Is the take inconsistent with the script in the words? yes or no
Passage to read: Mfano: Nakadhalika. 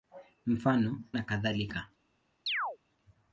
no